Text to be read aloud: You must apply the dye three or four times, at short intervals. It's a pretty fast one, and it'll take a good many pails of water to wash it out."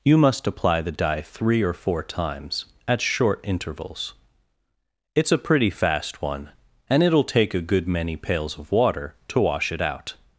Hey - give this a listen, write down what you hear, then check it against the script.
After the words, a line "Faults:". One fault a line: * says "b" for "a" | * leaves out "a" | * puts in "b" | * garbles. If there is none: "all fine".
You must apply the dye three or four times, at short intervals. It's a pretty fast one, and it'll take a good many pails of water to wash it out."
Faults:
all fine